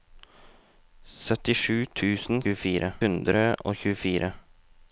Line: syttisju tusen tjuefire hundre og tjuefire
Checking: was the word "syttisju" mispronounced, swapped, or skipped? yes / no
no